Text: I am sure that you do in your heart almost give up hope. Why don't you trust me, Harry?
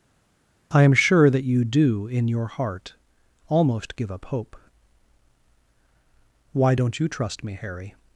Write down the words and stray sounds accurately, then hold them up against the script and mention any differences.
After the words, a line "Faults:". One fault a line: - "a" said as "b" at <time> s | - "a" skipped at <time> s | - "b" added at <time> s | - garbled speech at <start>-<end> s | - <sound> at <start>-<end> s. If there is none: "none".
I am sure that you do in your heart almost give up hope. Why don't you trust me, Harry?
Faults:
none